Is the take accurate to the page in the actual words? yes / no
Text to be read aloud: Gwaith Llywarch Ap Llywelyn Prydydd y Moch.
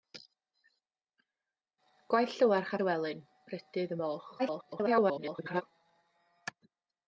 no